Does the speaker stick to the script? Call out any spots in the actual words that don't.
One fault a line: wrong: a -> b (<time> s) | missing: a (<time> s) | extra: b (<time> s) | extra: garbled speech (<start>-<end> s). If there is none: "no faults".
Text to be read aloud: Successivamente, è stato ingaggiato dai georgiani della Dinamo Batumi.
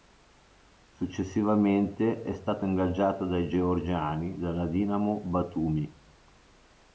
no faults